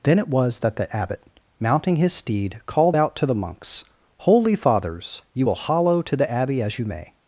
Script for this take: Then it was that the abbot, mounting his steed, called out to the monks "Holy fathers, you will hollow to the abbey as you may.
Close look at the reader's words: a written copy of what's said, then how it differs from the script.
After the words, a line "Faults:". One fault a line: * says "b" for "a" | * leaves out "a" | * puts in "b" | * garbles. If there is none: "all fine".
Then it was that the abbot, mounting his steed, called out to the monks "Holy fathers, you will hollow to the abbey as you may.
Faults:
all fine